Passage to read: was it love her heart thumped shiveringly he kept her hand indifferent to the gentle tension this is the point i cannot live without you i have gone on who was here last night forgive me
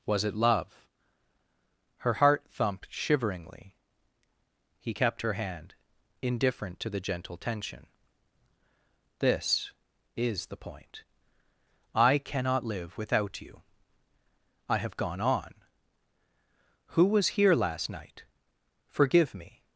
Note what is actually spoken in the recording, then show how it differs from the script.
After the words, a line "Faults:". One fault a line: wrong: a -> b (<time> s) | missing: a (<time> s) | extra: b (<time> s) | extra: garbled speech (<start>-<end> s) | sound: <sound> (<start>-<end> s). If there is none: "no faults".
was it love her heart thumped shiveringly he kept her hand indifferent to the gentle tension this is the point i cannot live without you i have gone on who was here last night forgive me
Faults:
no faults